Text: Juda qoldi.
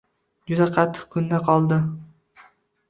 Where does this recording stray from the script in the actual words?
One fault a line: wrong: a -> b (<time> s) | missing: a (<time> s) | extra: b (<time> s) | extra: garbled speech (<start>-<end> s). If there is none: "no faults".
extra: qattiq kunda (0.8 s)